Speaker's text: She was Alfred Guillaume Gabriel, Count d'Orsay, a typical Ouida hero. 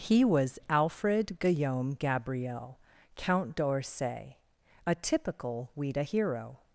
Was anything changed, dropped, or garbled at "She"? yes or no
yes